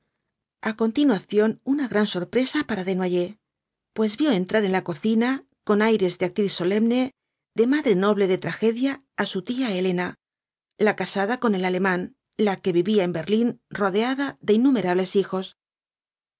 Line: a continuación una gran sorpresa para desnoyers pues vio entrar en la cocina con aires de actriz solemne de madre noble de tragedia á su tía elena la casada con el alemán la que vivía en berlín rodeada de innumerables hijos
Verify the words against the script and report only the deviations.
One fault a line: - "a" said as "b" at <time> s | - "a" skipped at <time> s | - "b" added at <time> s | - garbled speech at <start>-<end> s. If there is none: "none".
none